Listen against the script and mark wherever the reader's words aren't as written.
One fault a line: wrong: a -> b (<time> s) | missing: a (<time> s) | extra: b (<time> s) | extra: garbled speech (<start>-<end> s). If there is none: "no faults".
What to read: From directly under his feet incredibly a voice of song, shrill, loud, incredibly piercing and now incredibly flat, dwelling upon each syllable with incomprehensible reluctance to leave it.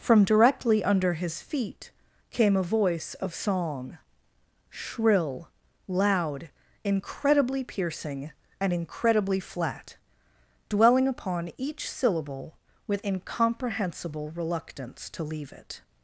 wrong: incredibly -> came (2.3 s)
missing: now (8.7 s)